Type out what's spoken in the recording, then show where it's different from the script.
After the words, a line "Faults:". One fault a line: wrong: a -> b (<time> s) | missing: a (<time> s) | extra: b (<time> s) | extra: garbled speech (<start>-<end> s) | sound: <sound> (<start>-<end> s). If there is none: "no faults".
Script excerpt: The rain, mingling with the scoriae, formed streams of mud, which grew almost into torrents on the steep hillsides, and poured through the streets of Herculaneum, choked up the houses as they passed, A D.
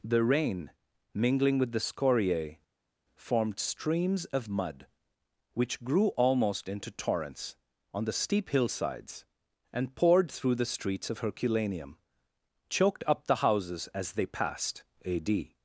The rain, mingling with the scoriae, formed streams of mud, which grew almost into torrents on the steep hillsides, and poured through the streets of Herculaneum, choked up the houses as they passed, A D.
Faults:
no faults